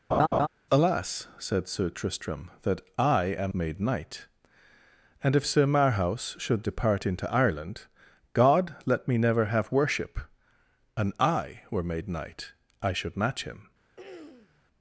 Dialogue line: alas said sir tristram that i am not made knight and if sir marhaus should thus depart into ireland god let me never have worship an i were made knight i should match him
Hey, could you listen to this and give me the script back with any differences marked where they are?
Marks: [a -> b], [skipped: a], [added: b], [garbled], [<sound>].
[laugh] alas said sir tristram that i am [skipped: not] made knight and if sir marhaus should [skipped: thus] depart into ireland god let me never have worship an i were made knight i should match him [throat clearing]